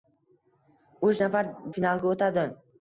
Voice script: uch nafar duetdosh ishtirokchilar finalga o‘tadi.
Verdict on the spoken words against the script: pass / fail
fail